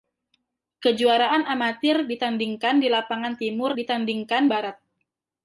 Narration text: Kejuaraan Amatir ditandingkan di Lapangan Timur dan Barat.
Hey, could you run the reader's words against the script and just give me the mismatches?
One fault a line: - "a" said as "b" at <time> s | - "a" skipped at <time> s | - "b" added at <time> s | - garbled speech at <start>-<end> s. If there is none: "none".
- "dan" said as "ditandingkan" at 3.8 s